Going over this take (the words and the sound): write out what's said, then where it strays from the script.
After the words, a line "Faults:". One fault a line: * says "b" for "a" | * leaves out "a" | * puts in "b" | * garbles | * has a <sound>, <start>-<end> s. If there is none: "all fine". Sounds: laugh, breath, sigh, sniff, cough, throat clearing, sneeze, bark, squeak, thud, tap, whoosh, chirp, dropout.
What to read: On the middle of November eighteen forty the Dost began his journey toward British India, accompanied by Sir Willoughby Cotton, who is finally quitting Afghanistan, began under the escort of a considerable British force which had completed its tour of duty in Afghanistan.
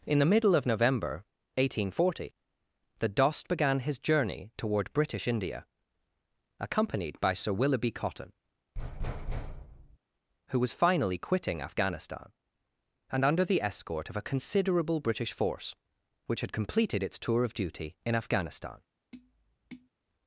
In the middle of November eighteen forty the Dost began his journey toward British India, accompanied by Sir Willoughby Cotton, who was finally quitting Afghanistan, and under the escort of a considerable British force which had completed its tour of duty in Afghanistan.
Faults:
* says "In" for "On"
* has a thud, 8.8-10.0 s
* says "was" for "is"
* says "and" for "began"
* has a tap, 19.1-19.9 s